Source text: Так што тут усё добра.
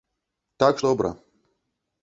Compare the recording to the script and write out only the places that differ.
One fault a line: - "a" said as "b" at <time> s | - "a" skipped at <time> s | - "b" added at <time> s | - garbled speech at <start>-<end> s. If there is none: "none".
- "што тут усё" skipped at 0.8 s